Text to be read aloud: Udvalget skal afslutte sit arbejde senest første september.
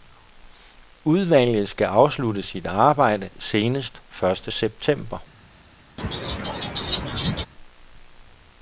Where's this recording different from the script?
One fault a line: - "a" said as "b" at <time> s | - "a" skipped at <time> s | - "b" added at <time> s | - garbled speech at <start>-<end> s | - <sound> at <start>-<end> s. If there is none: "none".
- laugh at 6.0-7.5 s